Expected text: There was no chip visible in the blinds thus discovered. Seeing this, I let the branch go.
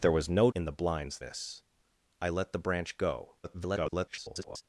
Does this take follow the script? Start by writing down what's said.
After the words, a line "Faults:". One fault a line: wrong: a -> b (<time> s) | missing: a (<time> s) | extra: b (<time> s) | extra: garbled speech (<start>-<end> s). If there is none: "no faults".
There was no in the blinds this, I let the branch go. [garbled]
Faults:
missing: chip visible (0.5 s)
missing: thus discovered Seeing (1.2 s)
extra: garbled speech (3.4-4.6 s)